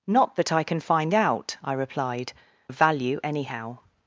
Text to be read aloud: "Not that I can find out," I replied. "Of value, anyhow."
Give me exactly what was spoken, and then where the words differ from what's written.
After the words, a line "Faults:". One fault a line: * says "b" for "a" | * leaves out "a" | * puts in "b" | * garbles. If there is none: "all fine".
"Not that I can find out," I replied. "Of value, anyhow."
Faults:
all fine